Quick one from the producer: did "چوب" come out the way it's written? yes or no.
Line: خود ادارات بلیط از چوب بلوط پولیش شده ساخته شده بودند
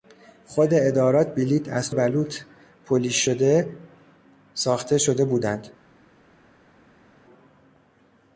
no